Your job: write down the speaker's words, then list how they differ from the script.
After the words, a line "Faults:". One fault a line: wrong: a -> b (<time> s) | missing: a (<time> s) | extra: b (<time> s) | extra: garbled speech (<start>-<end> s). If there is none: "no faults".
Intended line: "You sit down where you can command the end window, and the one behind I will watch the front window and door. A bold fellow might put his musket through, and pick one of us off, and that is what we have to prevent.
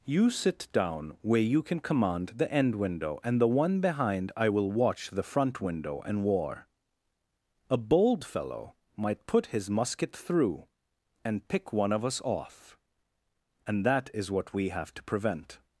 "You sit down where you can command the end window, and the one behind I will watch the front window and war. A bold fellow might put his musket through, and pick one of us off, and that is what we have to prevent.
Faults:
wrong: door -> war (6.2 s)